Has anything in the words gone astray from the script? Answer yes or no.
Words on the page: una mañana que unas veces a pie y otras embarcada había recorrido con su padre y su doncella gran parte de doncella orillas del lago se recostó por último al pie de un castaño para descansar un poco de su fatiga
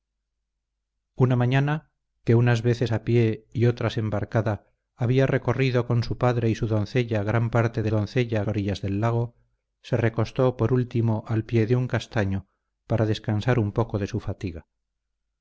no